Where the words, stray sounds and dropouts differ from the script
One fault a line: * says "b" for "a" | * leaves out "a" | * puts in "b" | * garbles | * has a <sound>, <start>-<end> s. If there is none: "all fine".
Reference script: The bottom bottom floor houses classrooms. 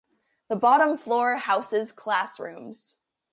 * leaves out "bottom"